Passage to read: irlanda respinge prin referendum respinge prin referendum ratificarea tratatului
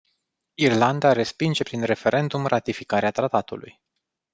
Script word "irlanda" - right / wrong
right